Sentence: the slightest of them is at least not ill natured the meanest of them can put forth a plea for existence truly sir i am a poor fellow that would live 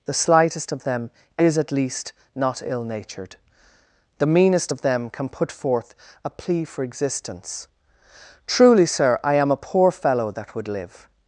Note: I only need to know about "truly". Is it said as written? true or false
true